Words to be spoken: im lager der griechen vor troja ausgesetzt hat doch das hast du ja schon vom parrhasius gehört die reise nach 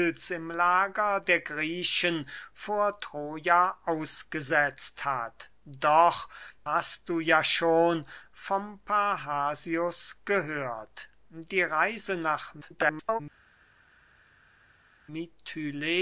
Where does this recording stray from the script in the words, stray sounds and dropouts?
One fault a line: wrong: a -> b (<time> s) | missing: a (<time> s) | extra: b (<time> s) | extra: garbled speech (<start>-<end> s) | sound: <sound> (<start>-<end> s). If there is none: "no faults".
missing: das (6.3 s)
extra: garbled speech (12.6-13.2 s)